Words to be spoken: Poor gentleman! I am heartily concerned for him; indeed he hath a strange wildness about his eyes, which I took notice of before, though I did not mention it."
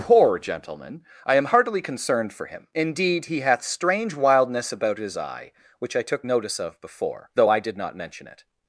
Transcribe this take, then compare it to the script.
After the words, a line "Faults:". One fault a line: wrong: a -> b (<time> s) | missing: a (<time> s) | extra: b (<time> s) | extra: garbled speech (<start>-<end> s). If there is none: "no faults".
Poor gentleman! I am heartily concerned for him; indeed he hath strange wildness about his eye, which I took notice of before, though I did not mention it."
Faults:
missing: a (3.6 s)
wrong: eyes -> eye (5.2 s)